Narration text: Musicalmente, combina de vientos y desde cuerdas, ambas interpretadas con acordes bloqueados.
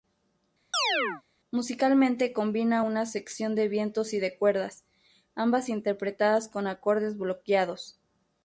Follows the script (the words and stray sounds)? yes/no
no